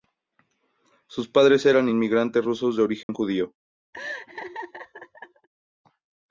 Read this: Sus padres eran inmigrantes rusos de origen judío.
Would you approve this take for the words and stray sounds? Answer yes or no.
no